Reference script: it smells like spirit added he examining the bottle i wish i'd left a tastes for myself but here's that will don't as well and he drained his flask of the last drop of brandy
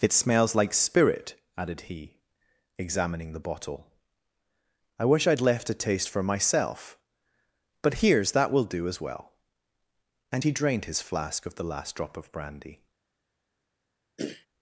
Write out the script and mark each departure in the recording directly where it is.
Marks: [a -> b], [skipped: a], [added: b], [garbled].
it smells like spirit added he examining the bottle i wish i'd left a [tastes -> taste] for myself but here's that will [don't -> do] as well and he drained his flask of the last drop of brandy